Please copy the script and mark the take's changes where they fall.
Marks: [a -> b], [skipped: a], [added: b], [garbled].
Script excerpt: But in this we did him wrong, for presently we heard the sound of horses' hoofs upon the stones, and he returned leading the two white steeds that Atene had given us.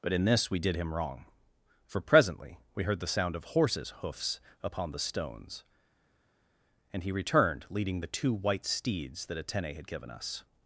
But in this we did him wrong, for presently we heard the sound of horses' hoofs upon the stones, and he returned leading the two white steeds that Atene had given us.